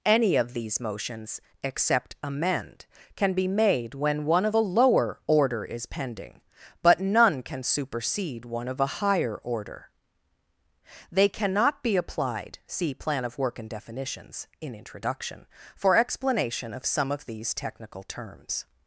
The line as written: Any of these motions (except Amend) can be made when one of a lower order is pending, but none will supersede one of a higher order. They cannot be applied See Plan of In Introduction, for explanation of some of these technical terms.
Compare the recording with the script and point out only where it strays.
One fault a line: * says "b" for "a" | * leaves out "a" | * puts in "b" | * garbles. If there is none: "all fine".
* says "can" for "will"
* puts in "Work and Definitions"